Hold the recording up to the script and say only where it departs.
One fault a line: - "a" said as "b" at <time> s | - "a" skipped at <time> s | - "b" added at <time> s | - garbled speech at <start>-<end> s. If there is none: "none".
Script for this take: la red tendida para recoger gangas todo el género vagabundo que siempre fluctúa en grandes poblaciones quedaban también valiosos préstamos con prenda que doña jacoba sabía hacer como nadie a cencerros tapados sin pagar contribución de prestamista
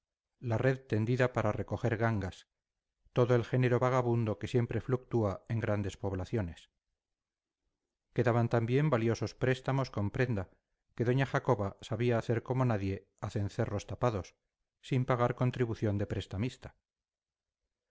none